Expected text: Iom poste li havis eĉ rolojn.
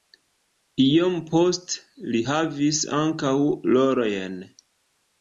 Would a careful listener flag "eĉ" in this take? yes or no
yes